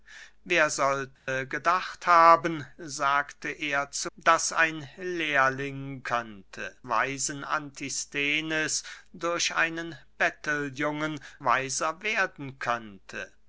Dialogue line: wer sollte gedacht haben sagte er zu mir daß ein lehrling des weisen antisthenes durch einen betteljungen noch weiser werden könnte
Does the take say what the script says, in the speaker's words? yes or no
no